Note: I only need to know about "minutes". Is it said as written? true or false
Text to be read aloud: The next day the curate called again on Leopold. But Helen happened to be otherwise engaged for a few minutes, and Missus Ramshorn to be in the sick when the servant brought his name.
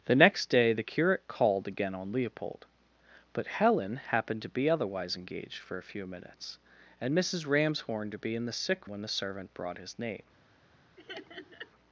true